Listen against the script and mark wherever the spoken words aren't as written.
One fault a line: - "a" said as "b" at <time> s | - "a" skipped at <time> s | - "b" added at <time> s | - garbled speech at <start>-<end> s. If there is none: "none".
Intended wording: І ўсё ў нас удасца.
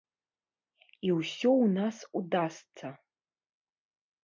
none